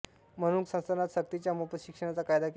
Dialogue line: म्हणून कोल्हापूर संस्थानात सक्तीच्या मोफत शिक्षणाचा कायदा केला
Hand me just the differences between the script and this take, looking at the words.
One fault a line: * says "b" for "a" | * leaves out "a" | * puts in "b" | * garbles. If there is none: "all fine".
* leaves out "कोल्हापूर"